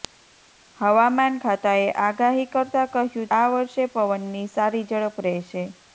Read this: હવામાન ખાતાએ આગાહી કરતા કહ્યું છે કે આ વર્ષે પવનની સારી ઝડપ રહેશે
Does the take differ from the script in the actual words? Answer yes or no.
yes